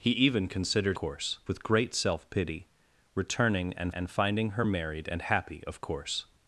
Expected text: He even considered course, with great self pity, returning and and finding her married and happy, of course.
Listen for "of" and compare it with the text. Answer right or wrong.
right